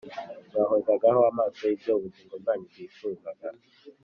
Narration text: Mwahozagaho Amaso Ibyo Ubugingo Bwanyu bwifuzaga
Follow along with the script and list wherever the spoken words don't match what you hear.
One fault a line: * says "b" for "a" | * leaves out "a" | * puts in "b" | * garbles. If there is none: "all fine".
all fine